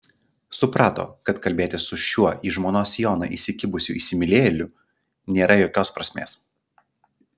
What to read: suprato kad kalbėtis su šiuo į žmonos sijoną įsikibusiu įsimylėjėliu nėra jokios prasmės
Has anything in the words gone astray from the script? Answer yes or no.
no